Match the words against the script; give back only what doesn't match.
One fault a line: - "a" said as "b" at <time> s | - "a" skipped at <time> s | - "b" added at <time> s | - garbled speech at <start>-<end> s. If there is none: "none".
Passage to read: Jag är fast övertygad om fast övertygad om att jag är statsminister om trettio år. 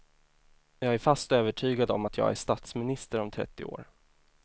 - "fast övertygad om" skipped at 2.1 s